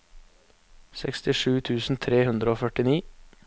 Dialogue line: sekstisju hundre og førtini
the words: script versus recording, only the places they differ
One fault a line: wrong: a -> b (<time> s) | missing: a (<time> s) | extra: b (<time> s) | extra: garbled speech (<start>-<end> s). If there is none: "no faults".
extra: tusen tre (1.7 s)